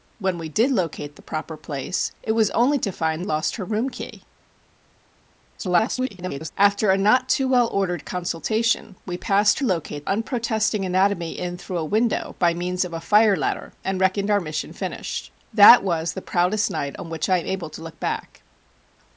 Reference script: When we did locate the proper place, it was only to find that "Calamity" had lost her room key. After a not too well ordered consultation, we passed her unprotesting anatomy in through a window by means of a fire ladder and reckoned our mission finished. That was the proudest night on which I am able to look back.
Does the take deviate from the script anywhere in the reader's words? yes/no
yes